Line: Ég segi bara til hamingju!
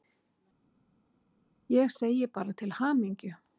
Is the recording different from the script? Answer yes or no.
no